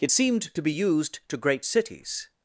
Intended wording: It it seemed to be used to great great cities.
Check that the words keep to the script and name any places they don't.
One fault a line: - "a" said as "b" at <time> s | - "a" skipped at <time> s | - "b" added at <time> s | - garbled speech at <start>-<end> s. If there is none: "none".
- "it" skipped at 0.1 s
- "great" skipped at 1.6 s